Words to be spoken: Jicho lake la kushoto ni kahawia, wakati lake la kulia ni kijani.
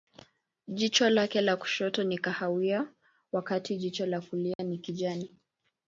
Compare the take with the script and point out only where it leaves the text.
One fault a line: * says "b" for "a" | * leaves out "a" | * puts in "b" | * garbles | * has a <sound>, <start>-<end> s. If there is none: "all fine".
* says "jicho" for "lake"
* has a dropout, 4.5-4.6 s